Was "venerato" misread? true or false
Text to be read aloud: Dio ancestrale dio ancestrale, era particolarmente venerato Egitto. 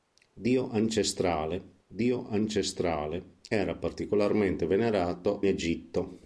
false